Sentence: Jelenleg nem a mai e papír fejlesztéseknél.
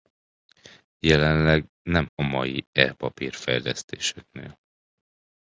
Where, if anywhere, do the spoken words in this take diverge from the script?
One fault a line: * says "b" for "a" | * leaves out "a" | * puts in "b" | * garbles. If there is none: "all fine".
all fine